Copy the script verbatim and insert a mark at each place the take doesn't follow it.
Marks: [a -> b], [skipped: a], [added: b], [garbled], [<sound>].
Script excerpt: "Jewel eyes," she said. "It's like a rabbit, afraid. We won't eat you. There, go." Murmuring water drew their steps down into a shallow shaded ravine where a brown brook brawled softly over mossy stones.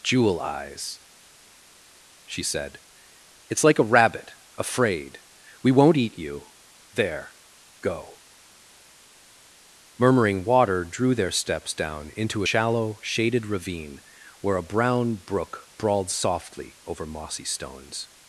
"Jewel eyes," she said. "It's like a rabbit, afraid. We won't eat you. There, go." Murmuring water drew their steps down into [skipped: a] shallow shaded ravine where a brown brook brawled softly over mossy stones.